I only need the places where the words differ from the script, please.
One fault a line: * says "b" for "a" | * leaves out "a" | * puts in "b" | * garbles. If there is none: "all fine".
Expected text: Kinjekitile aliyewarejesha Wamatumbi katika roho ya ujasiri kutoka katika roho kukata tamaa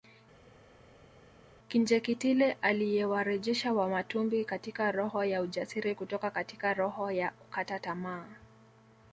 * puts in "ya"